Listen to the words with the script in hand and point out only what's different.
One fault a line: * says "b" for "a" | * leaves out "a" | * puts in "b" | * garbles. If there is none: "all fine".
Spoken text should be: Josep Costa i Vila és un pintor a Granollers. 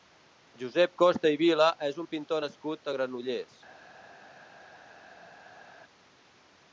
* puts in "nascut"